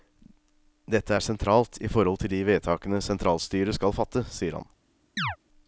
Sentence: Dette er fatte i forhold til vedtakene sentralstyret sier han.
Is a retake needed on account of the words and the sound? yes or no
yes